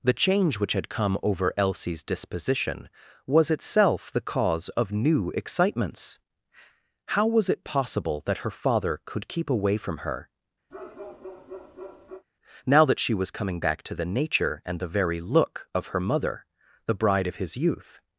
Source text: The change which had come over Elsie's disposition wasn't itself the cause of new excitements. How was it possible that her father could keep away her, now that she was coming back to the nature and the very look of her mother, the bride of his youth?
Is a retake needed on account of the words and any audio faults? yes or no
yes